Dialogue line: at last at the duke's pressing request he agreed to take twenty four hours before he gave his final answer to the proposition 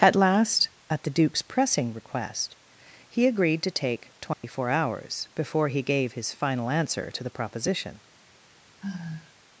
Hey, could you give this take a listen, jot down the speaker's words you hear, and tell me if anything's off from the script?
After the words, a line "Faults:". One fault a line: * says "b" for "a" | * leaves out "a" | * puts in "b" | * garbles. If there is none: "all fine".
at last at the duke's pressing request he agreed to take twenty four hours before he gave his final answer to the proposition
Faults:
all fine